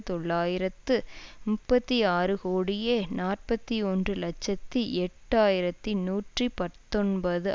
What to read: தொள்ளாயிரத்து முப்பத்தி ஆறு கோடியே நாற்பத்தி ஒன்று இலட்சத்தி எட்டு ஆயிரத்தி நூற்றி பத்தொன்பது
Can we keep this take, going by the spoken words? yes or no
yes